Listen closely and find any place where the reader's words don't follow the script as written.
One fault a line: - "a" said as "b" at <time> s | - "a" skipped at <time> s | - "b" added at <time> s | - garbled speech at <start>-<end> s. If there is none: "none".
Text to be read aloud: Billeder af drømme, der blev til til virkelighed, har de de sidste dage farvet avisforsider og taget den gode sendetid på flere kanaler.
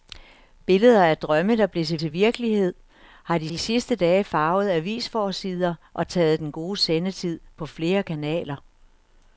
none